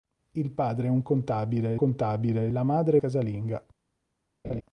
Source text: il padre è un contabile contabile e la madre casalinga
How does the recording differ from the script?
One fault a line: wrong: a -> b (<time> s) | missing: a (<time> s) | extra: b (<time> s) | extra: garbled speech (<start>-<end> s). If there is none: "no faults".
no faults